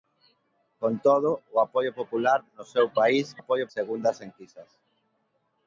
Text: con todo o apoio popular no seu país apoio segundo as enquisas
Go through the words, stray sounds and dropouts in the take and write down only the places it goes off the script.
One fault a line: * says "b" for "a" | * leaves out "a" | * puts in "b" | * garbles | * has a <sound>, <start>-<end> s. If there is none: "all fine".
all fine